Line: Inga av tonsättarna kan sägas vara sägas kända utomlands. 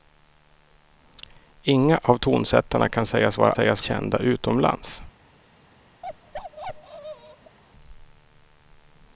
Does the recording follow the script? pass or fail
pass